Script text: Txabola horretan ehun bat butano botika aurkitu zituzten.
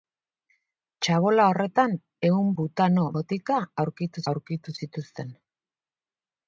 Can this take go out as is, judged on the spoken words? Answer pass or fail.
fail